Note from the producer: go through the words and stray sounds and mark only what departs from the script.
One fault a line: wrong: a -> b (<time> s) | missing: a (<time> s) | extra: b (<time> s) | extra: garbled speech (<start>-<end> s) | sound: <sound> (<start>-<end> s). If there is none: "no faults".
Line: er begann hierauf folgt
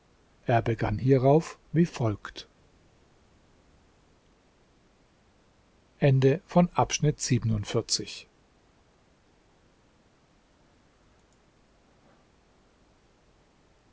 extra: wie (1.7 s)